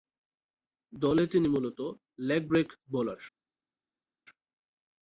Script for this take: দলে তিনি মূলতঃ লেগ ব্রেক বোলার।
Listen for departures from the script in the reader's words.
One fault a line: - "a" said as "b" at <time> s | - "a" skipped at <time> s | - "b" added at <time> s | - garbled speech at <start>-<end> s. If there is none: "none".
none